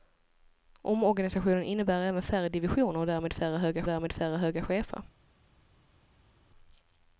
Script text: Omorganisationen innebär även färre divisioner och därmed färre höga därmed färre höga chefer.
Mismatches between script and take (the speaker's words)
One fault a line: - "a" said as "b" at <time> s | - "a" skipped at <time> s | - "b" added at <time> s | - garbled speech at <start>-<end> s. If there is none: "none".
none